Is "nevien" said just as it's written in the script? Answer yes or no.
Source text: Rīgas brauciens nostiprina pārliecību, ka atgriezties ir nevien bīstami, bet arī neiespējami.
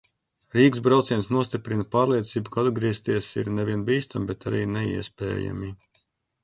yes